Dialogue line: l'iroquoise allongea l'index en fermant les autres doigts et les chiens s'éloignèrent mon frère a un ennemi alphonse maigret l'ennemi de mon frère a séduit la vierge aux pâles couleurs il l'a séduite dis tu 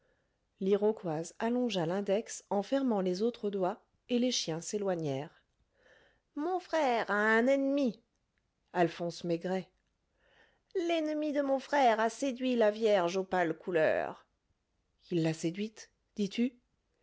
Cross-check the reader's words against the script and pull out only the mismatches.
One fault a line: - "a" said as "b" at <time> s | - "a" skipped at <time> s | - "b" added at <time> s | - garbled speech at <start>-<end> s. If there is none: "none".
none